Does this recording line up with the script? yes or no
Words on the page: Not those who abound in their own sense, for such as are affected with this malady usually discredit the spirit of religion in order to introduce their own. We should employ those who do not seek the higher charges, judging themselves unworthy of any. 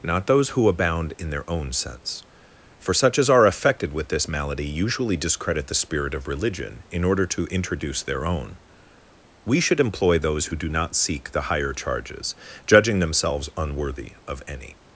yes